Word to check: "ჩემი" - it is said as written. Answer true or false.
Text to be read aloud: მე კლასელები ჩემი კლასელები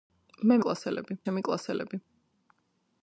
true